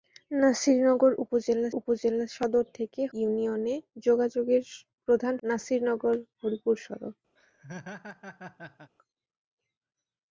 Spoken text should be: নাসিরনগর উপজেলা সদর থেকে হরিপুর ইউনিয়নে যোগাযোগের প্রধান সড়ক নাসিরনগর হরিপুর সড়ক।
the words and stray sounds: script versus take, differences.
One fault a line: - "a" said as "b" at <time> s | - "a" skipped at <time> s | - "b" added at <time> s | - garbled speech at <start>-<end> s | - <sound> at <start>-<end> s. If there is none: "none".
- "উপজেলা" added at 1.8 s
- "হরিপুর" skipped at 3.0 s
- "সড়ক" skipped at 5.3 s
- laugh at 7.4-8.9 s